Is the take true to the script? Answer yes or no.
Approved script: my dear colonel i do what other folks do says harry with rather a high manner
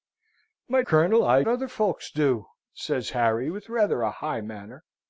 no